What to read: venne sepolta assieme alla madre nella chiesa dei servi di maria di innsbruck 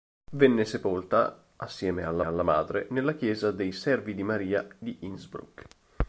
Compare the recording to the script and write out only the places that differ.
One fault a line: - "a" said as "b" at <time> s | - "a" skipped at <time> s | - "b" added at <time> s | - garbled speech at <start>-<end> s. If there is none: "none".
- "alla" added at 2.2 s